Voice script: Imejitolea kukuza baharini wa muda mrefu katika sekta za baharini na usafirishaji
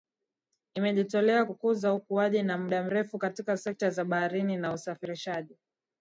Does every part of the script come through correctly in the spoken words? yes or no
no